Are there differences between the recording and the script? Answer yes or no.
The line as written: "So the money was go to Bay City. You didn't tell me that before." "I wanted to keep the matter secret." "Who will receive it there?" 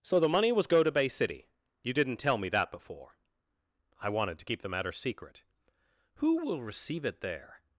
no